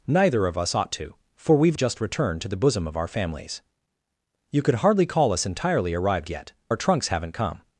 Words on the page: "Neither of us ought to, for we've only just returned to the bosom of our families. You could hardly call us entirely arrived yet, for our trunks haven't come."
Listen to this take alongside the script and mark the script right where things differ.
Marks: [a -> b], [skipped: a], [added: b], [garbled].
"Neither of us ought to, for we've [skipped: only] just returned to the bosom of our families. You could hardly call us entirely arrived yet, [skipped: for] our trunks haven't come."